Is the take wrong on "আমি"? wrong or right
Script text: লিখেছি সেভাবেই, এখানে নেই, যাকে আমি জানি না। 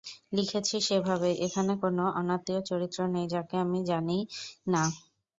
right